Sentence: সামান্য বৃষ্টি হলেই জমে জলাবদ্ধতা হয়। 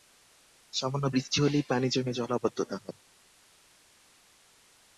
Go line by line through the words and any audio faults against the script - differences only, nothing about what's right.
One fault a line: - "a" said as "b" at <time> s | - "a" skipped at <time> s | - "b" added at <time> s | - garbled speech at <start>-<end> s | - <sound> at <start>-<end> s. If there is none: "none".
- "পানি" added at 1.7 s